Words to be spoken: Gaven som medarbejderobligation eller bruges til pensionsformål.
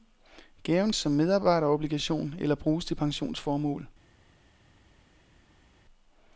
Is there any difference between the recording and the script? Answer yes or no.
no